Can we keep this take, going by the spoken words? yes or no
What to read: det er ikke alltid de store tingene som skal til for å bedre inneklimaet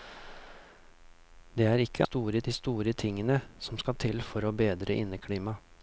no